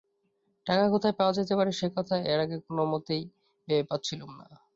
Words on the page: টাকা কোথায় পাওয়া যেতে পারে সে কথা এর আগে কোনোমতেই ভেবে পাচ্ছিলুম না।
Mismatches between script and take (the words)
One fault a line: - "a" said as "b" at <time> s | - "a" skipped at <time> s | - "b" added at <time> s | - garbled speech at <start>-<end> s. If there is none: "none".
none